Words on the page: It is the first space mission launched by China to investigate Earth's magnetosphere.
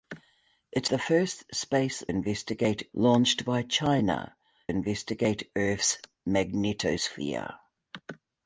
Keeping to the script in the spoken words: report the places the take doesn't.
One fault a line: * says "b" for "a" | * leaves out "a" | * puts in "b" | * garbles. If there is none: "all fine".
* leaves out "is"
* says "investigate" for "mission"
* leaves out "to"